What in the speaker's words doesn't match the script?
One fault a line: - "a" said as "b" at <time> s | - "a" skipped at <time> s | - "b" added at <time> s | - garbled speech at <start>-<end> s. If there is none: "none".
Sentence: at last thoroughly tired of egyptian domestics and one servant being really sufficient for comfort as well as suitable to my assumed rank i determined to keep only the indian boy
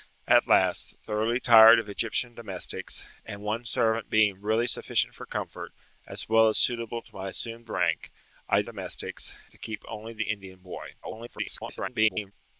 - "determined" said as "domestics" at 8.6 s
- garbled speech at 11.0-12.3 s